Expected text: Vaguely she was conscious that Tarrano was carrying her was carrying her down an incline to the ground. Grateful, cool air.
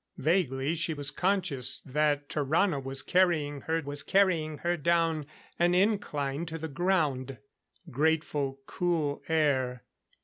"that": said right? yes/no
yes